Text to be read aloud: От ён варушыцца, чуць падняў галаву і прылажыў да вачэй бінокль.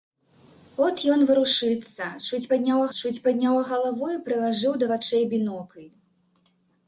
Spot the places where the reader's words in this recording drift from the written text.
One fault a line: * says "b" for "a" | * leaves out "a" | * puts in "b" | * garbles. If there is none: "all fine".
* puts in "чуць падняў"